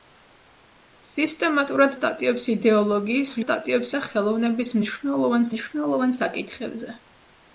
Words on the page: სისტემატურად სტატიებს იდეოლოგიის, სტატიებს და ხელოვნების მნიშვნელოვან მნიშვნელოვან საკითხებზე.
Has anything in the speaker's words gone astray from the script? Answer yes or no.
no